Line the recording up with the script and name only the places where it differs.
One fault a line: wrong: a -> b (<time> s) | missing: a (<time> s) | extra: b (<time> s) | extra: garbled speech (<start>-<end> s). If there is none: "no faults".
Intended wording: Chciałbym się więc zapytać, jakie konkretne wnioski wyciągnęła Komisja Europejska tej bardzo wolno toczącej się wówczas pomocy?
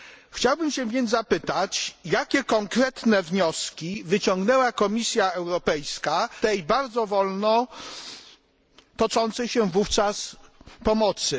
no faults